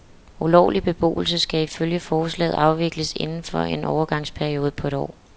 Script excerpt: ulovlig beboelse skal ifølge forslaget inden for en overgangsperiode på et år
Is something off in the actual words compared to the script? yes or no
yes